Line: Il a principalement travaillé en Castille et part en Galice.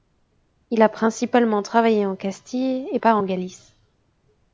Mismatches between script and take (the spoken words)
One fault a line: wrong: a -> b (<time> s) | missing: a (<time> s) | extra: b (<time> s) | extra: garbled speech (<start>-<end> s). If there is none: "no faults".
no faults